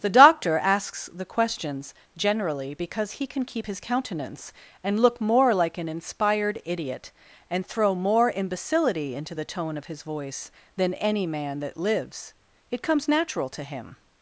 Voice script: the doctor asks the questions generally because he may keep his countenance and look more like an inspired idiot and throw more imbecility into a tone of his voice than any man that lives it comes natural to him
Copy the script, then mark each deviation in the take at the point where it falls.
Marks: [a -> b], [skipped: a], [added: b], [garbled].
the doctor asks the questions generally because he [may -> can] keep his countenance and look more like an inspired idiot and throw more imbecility into [a -> the] tone of his voice than any man that lives it comes natural to him